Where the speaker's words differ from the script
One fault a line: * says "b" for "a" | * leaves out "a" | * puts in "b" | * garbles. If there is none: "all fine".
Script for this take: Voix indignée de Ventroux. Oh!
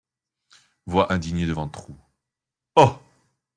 all fine